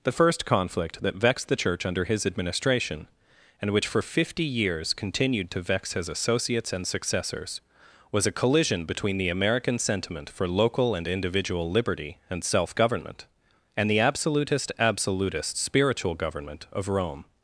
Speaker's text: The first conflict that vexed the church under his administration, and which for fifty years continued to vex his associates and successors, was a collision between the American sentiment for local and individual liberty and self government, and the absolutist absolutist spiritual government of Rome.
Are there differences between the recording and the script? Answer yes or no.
no